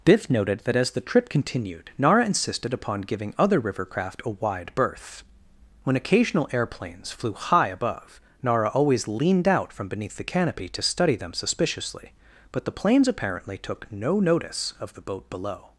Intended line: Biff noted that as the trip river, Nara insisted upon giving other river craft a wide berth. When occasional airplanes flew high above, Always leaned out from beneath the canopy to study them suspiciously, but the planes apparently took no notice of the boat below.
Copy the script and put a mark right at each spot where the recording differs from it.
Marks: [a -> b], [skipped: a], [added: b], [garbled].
Biff noted that as the trip [river, -> continued] Nara insisted upon giving other river craft a wide berth. When occasional airplanes flew high above, [added: Nara] Always leaned out from beneath the canopy to study them suspiciously, but the planes apparently took no notice of the boat below.